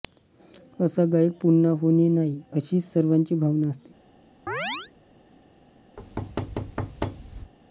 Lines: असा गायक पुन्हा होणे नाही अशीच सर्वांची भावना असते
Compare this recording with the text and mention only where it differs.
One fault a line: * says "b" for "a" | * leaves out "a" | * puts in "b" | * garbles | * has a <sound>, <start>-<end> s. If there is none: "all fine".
* has a chirp, 4.5-4.9 s
* has a thud, 6.0-7.5 s